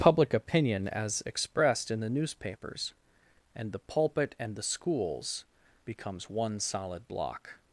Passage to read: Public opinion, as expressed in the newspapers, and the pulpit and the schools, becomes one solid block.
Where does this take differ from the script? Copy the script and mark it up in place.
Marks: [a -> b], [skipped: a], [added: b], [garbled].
Public opinion, as expressed in the newspapers, and the pulpit and the schools, becomes one solid block.